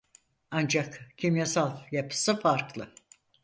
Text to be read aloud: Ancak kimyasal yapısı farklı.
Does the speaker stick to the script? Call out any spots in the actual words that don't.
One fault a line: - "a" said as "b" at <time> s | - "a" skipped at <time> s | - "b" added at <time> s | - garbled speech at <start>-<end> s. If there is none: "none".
none